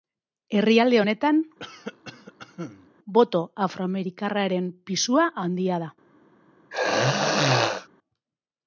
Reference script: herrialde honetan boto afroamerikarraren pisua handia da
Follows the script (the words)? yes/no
yes